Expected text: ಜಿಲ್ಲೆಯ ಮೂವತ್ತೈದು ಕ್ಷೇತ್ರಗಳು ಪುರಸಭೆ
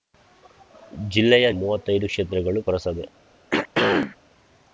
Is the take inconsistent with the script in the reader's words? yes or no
no